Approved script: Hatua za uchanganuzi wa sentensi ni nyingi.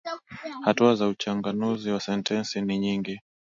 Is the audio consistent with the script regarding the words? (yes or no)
yes